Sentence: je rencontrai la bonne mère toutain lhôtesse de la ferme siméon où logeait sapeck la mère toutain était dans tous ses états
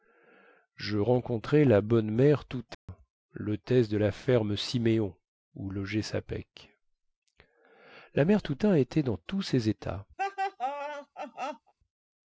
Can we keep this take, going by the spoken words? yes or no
yes